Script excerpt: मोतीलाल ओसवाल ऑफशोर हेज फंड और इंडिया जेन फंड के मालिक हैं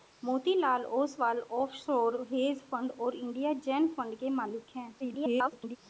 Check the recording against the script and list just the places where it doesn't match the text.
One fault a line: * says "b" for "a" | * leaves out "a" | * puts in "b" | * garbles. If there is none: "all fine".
* garbles